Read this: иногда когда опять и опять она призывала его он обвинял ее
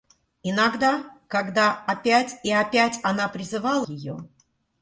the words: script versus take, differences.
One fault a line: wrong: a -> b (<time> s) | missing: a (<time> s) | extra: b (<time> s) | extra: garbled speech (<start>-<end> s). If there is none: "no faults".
missing: его он обвинял (3.9 s)